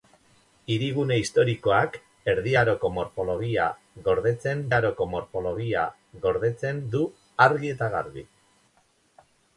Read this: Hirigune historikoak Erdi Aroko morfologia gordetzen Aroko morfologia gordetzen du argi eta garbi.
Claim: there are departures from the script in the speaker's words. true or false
false